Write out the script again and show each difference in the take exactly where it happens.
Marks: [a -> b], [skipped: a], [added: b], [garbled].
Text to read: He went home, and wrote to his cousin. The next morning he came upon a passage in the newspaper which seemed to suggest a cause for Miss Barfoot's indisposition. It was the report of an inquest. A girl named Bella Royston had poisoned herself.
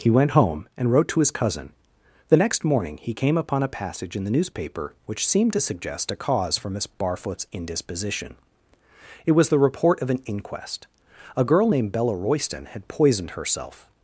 He went home, and wrote to his cousin. The next morning he came upon a passage in the newspaper which seemed to suggest a cause for Miss Barfoot's indisposition. It was the report of an inquest. A girl named Bella Royston had poisoned herself.